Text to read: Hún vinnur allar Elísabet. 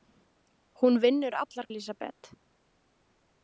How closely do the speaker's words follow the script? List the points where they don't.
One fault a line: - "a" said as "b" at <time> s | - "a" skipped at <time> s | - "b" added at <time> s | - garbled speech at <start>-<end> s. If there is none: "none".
none